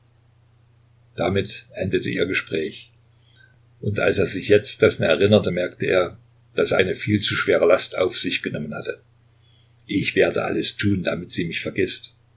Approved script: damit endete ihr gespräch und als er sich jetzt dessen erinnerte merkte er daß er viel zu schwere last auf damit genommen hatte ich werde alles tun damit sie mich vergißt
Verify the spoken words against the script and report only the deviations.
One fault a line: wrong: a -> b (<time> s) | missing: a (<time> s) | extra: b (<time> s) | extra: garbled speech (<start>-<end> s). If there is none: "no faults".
extra: eine (6.8 s)
wrong: damit -> sich (8.2 s)